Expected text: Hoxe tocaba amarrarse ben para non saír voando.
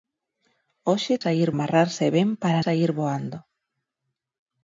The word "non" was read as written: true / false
false